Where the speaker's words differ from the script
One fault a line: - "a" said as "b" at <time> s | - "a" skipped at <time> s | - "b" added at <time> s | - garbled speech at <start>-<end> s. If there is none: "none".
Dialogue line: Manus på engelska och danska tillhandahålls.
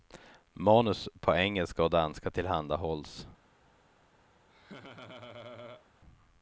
none